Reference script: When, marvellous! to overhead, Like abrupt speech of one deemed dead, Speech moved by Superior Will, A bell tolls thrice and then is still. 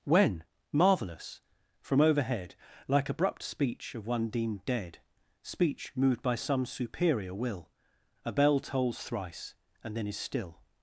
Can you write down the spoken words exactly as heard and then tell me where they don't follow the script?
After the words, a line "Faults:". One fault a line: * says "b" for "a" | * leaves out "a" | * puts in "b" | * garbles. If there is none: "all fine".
When, marvellous! from overhead, Like abrupt speech of one deemed dead, Speech moved by some Superior Will, A bell tolls thrice and then is still.
Faults:
* says "from" for "to"
* puts in "some"